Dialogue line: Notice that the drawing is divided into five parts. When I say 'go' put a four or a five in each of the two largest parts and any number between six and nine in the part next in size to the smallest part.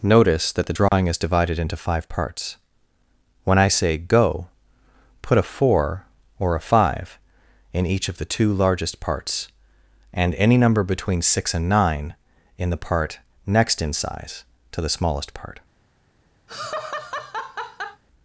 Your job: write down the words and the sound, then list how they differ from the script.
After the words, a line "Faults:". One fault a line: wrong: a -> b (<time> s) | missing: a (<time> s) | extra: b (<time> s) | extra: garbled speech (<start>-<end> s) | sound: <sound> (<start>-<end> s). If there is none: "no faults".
Notice that the drawing is divided into five parts. When I say 'go' put a four or a five in each of the two largest parts and any number between six and nine in the part next in size to the smallest part.
Faults:
sound: dropout (0.9-0.9 s)
sound: laugh (16.5-18.0 s)